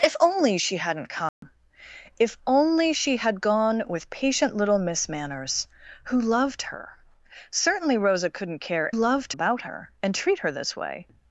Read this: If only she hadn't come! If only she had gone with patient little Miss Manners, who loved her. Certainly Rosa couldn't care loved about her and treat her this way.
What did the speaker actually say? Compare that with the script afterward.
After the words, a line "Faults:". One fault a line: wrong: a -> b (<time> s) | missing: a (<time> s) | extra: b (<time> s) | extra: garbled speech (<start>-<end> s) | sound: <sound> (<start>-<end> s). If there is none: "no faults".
If only she hadn't come! If only she had gone with patient little Miss Manners, who loved her. Certainly Rosa couldn't care loved about her and treat her this way.
Faults:
sound: dropout (1.3-1.4 s)